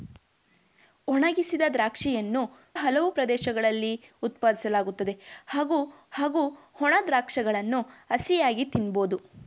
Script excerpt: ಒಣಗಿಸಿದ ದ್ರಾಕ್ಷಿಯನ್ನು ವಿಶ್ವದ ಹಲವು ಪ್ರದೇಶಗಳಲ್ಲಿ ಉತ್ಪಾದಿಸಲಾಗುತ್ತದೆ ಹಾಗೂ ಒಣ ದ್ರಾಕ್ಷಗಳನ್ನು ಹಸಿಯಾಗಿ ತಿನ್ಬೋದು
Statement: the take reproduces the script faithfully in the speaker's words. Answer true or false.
false